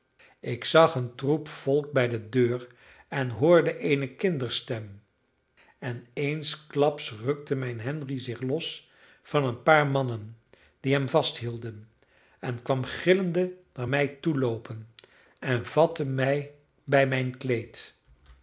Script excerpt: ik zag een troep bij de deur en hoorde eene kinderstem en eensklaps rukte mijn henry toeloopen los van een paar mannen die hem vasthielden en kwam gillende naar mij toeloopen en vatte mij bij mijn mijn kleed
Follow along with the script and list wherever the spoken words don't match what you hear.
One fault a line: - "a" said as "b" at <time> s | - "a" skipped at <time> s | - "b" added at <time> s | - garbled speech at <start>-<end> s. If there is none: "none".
- "volk" added at 1.5 s
- "toeloopen" said as "zich" at 8.2 s
- "mijn" skipped at 17.4 s